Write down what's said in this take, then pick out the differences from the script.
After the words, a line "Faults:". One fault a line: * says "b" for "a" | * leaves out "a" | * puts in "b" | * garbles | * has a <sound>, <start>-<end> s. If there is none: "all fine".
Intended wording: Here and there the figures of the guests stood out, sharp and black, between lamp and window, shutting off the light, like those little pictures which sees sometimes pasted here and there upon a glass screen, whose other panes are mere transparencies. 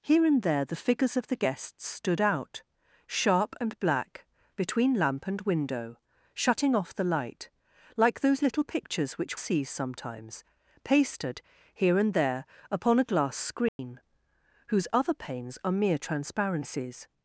Here and there the figures of the guests stood out, sharp and black, between lamp and window, shutting off the light, like those little pictures which sees sometimes pasted here and there upon a glass screen, whose other panes are mere transparencies.
Faults:
* has a dropout, 13.7-13.8 s